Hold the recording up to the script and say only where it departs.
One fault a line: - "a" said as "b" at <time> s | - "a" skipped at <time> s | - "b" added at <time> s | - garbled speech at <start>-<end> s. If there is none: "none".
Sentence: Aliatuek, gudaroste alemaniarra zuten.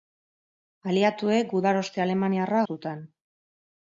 none